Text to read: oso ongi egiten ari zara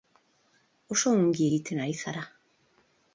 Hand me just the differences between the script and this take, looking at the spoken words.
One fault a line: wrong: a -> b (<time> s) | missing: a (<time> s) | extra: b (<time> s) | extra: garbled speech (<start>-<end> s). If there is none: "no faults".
no faults